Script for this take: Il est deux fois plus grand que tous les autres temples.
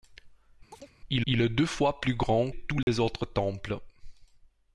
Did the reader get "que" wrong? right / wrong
wrong